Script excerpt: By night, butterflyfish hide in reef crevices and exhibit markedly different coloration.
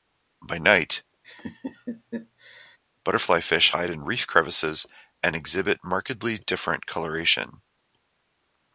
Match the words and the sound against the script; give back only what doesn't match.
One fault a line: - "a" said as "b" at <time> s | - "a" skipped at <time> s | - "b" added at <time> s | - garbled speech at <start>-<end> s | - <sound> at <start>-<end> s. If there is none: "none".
- laugh at 1.2-2.8 s